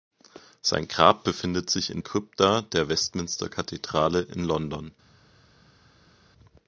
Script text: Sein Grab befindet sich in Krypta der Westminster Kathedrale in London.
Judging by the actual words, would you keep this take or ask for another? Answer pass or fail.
pass